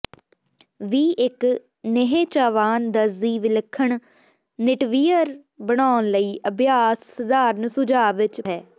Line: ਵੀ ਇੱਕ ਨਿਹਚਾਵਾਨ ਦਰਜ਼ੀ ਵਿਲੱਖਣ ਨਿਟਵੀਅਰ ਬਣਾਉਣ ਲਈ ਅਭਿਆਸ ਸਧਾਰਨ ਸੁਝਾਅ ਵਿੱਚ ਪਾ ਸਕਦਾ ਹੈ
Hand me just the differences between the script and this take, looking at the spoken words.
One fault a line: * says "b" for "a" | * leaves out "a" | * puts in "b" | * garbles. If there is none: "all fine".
* leaves out "ਪਾ ਸਕਦਾ"